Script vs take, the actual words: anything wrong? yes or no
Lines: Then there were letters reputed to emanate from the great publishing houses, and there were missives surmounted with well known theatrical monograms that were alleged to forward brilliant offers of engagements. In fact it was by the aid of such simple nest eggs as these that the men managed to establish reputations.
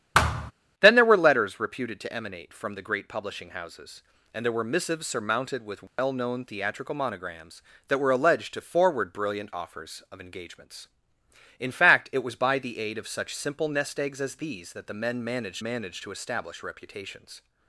yes